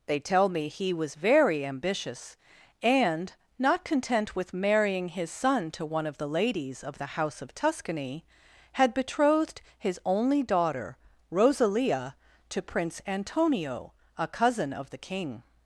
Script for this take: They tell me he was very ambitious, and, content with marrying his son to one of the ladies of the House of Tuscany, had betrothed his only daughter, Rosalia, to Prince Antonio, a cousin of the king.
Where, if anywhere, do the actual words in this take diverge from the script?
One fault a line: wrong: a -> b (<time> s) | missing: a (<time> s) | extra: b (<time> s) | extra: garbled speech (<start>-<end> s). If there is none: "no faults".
extra: not (3.6 s)